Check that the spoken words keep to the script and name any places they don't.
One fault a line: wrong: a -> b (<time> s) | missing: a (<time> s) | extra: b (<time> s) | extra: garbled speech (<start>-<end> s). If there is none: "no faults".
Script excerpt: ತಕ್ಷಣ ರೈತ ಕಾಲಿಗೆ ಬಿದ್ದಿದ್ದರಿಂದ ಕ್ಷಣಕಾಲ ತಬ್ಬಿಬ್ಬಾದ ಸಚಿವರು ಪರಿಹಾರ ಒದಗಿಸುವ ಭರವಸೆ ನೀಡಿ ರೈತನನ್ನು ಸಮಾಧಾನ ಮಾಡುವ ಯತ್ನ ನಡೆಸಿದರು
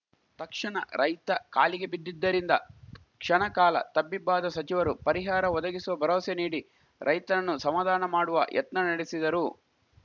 no faults